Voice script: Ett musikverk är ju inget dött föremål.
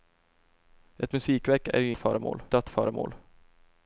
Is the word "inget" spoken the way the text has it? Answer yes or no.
no